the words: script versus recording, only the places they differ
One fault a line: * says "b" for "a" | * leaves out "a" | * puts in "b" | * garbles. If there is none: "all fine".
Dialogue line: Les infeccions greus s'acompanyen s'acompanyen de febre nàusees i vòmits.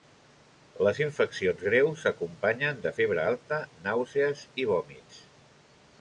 * leaves out "s'acompanyen"
* puts in "alta"